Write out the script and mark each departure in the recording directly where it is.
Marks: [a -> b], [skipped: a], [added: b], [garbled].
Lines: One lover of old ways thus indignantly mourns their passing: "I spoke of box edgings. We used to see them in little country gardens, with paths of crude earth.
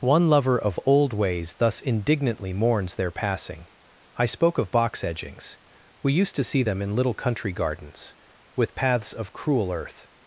One lover of old ways thus indignantly mourns their passing: "I spoke of box edgings. We used to see them in little country gardens, with paths of [crude -> cruel] earth.